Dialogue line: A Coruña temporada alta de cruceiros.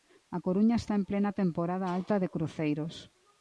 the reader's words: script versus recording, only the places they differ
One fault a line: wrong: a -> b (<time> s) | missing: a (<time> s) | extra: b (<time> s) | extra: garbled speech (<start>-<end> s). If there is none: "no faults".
extra: está en plena (0.8 s)